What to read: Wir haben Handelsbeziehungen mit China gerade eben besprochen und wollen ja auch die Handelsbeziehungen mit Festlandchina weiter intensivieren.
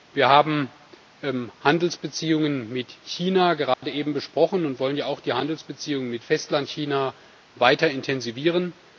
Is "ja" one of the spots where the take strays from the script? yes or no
no